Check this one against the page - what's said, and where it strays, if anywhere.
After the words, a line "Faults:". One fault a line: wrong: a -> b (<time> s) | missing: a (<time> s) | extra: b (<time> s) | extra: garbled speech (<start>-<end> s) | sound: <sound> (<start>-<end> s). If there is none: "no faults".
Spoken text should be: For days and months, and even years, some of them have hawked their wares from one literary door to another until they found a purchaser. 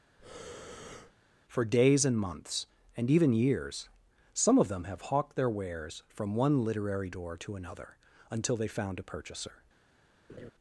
For days and months, and even years, some of them have hawked their wares from one literary door to another until they found a purchaser.
Faults:
sound: breath (0.2-1.1 s)
sound: laugh (10.3-10.5 s)